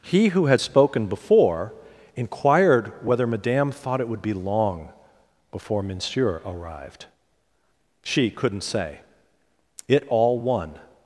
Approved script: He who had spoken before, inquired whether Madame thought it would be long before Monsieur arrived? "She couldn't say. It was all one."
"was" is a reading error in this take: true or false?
true